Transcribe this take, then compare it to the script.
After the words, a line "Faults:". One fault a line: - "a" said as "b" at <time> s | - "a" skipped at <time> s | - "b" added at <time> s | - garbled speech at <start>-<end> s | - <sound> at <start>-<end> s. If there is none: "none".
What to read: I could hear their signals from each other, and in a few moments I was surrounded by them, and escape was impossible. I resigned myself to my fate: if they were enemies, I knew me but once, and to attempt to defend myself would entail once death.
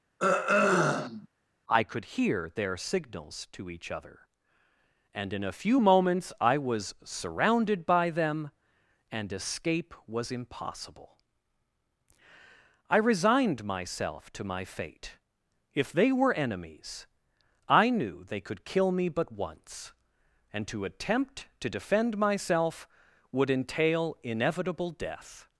I could hear their signals to each other, and in a few moments I was surrounded by them, and escape was impossible. I resigned myself to my fate: if they were enemies, I knew they could kill me but once, and to attempt to defend myself would entail inevitable death.
Faults:
- throat clearing at 0.2-1.3 s
- "from" said as "to" at 3.5 s
- "they could kill" added at 18.2 s
- "once" said as "inevitable" at 24.2 s